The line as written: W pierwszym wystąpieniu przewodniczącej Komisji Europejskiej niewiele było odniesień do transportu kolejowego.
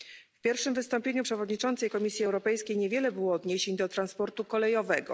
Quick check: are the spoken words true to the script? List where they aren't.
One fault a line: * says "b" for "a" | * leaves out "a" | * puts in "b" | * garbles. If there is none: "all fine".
all fine